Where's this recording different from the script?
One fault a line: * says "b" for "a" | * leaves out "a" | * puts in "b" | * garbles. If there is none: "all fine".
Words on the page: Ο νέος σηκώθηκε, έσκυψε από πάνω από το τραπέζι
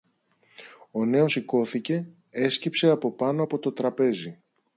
all fine